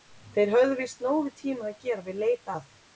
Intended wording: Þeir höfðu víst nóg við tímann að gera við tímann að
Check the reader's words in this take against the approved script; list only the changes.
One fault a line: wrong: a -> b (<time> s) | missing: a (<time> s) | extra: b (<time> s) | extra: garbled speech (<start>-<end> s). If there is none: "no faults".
wrong: tímann -> leit (2.3 s)